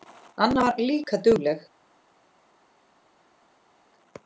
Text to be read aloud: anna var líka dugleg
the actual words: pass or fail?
pass